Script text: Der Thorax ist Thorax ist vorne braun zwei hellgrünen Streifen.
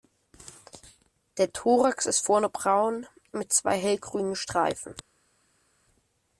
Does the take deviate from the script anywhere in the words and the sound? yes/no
yes